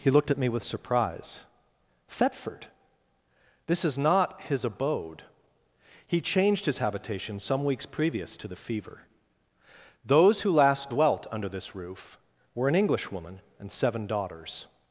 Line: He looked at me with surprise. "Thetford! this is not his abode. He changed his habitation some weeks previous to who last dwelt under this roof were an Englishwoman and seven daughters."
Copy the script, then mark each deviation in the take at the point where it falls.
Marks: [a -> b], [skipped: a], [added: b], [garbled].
He looked at me with surprise. "Thetford! this is not his abode. He changed his habitation some weeks previous to [added: the fever Those] who last dwelt under this roof were an Englishwoman and seven daughters."